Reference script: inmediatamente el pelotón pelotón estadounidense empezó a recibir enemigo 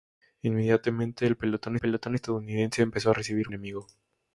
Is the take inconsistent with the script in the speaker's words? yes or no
no